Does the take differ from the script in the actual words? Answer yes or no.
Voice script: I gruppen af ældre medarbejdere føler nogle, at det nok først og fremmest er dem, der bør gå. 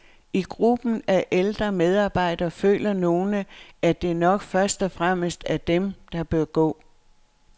no